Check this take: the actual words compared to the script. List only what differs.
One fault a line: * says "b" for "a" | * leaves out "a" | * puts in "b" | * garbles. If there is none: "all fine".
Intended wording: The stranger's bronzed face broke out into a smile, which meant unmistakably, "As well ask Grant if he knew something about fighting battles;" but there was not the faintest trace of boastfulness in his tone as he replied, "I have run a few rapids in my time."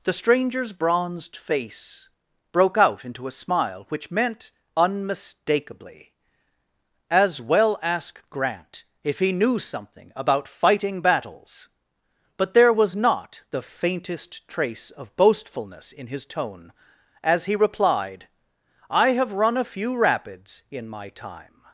all fine